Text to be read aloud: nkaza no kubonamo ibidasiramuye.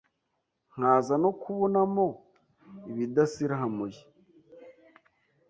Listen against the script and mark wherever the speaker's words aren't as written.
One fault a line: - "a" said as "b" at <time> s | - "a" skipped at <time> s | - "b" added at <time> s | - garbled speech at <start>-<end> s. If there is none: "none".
none